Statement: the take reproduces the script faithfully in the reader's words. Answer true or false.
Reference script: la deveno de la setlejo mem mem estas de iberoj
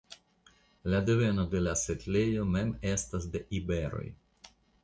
false